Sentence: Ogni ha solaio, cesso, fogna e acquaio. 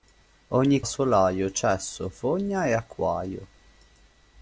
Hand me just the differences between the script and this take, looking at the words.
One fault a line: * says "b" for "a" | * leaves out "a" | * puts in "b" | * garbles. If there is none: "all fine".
all fine